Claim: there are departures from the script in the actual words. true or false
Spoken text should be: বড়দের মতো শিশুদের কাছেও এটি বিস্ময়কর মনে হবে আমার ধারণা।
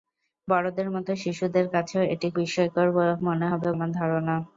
false